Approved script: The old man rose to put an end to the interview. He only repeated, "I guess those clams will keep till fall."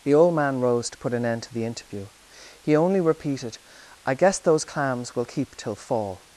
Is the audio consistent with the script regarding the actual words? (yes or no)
yes